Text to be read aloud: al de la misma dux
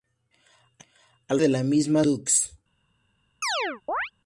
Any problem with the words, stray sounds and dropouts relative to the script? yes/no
yes